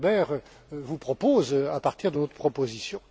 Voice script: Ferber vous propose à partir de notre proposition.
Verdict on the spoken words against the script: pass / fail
pass